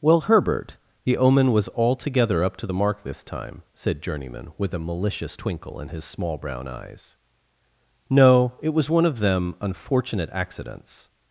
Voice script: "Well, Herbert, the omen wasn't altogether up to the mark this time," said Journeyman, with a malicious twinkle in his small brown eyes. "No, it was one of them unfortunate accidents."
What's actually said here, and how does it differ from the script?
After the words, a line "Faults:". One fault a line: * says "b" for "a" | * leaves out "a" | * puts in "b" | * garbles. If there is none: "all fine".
"Well, Herbert, the omen was altogether up to the mark this time," said Journeyman, with a malicious twinkle in his small brown eyes. "No, it was one of them unfortunate accidents."
Faults:
* says "was" for "wasn't"